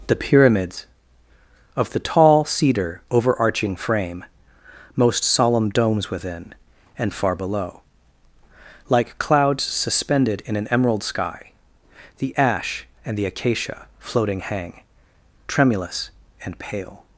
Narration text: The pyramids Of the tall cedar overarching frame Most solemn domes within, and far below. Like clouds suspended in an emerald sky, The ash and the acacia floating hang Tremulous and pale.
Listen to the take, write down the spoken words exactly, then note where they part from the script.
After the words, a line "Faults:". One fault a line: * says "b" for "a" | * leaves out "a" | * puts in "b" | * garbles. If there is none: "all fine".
The pyramids Of the tall cedar overarching frame Most solemn domes within, and far below. Like clouds suspended in an emerald sky, The ash and the acacia floating hang Tremulous and pale.
Faults:
all fine